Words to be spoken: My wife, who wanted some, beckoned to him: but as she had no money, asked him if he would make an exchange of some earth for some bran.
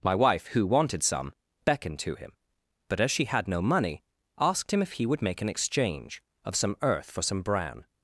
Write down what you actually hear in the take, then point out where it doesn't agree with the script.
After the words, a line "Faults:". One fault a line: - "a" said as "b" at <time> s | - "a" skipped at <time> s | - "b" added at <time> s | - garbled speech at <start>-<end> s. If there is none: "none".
My wife, who wanted some, beckoned to him: but as she had no money, asked him if he would make an exchange of some earth for some bran.
Faults:
none